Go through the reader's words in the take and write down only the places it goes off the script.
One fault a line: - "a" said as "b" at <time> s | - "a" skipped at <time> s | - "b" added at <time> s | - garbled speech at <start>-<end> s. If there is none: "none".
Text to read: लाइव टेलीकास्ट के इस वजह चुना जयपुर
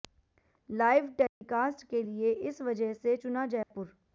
- "लिए" added at 2.0 s
- "से" added at 2.9 s